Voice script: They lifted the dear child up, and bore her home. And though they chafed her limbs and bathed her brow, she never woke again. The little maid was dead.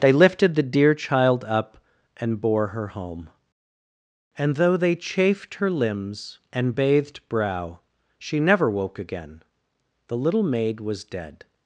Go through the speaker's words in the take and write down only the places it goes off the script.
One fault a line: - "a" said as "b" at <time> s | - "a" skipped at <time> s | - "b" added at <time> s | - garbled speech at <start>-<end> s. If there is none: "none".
- "her" skipped at 7.2 s